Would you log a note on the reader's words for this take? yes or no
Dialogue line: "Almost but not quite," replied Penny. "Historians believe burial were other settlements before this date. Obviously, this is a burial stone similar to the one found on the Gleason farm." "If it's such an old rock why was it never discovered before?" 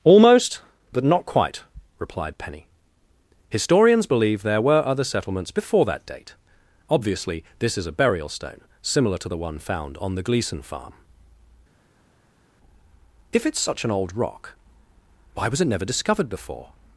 yes